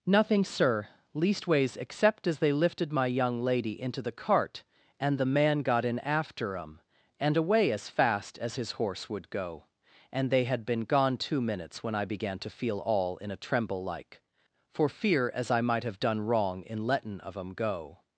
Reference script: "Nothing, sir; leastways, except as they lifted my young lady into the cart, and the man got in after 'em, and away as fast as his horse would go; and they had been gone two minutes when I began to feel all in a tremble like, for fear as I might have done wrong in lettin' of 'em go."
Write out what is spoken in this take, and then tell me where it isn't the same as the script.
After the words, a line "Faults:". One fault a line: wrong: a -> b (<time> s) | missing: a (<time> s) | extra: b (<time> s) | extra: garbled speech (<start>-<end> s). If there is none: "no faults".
"Nothing, sir; leastways, except as they lifted my young lady into the cart, and the man got in after 'em, and away as fast as his horse would go; and they had been gone two minutes when I began to feel all in a tremble like, for fear as I might have done wrong in lettin' of 'em go."
Faults:
no faults